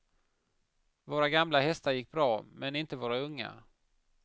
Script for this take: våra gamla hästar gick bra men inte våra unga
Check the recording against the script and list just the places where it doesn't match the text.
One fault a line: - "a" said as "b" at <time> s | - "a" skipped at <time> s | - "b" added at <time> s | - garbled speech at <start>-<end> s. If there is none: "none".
none